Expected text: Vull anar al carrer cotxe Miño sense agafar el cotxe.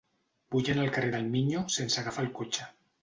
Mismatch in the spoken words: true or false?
true